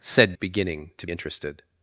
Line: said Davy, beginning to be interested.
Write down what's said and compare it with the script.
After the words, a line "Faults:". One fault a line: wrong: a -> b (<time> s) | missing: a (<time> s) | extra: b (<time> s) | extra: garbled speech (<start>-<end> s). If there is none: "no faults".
said Beginning to interested.
Faults:
missing: Davy (0.3 s)
missing: be (1.1 s)